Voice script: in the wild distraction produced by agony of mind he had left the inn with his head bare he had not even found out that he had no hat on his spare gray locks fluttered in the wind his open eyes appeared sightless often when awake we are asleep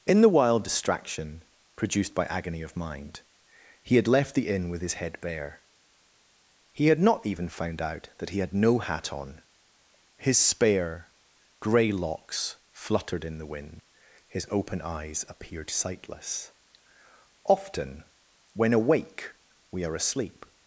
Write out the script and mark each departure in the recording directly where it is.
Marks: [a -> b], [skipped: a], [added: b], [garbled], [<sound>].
in the wild distraction produced by agony of mind he had left the inn with his head bare he had not even found out that he had no hat on his spare gray locks fluttered in the wind his open eyes appeared sightless often when awake we are asleep